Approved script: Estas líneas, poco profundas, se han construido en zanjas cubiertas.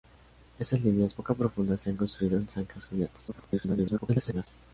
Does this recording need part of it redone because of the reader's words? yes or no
yes